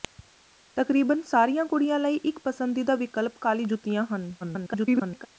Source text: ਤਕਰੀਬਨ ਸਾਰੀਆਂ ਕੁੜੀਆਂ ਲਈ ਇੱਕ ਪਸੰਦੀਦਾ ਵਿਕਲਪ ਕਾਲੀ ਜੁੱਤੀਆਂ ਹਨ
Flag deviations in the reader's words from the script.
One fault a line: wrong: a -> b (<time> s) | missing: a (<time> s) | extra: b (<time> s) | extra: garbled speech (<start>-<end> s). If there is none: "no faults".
extra: garbled speech (4.4-5.3 s)